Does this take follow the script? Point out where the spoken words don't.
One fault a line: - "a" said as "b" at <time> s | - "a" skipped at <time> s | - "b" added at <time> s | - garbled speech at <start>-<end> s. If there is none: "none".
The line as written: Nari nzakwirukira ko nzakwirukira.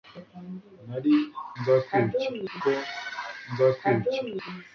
none